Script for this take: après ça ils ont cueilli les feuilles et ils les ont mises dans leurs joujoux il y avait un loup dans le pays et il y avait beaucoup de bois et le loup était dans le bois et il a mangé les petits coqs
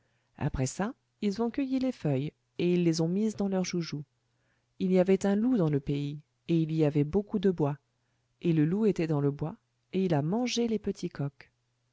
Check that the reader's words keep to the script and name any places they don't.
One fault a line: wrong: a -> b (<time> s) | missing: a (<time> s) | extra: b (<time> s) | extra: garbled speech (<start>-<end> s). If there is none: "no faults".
no faults